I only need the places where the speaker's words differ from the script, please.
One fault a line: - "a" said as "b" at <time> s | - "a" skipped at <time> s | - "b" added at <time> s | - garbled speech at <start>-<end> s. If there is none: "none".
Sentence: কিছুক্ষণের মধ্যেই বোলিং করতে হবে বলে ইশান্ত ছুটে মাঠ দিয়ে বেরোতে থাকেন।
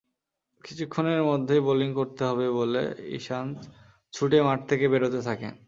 - "দিয়ে" said as "থেকে" at 4.7 s